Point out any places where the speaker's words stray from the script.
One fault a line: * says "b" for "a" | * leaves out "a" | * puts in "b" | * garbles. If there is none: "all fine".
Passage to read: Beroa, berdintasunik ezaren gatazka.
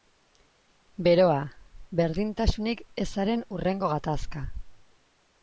* puts in "hurrengo"